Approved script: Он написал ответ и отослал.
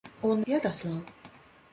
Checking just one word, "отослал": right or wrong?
right